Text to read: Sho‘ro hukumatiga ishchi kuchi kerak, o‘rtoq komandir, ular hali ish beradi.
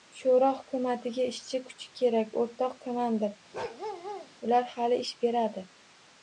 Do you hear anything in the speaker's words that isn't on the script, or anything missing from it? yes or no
no